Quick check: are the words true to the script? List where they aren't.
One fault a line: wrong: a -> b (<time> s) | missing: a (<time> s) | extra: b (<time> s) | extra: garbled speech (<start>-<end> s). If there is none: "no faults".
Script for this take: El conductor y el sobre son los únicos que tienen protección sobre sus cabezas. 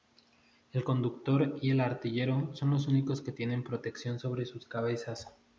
wrong: sobre -> artillero (1.8 s)